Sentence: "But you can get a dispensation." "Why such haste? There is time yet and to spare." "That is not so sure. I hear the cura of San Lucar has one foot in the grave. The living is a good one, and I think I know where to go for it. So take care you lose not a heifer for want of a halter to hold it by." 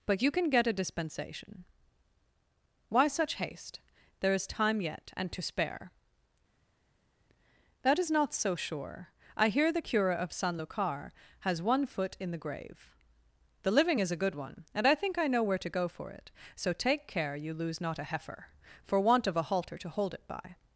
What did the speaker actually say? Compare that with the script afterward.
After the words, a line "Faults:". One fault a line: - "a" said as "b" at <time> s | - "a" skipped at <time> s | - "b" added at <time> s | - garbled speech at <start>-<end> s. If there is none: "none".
"But you can get a dispensation." "Why such haste? There is time yet and to spare." "That is not so sure. I hear the cura of San Lucar has one foot in the grave. The living is a good one, and I think I know where to go for it. So take care you lose not a heifer for want of a halter to hold it by."
Faults:
none